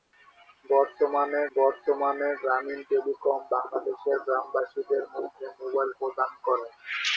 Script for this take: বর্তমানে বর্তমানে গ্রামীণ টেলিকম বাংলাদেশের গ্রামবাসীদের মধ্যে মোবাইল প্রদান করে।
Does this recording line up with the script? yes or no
yes